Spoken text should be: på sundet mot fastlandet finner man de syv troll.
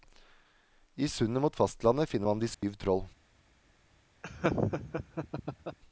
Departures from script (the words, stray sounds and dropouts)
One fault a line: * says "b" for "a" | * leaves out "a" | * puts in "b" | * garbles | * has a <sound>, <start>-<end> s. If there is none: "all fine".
* says "I" for "på"
* has a dropout, 2.5-2.6 s
* has a laugh, 4.2-5.8 s